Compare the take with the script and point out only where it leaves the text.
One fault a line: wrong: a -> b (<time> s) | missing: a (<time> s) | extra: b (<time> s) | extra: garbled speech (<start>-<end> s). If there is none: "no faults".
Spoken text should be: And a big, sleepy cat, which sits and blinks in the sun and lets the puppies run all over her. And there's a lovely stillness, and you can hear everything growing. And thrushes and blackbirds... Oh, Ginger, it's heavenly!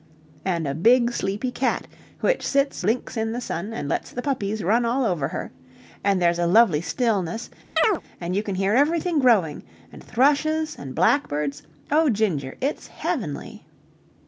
missing: and (2.8 s)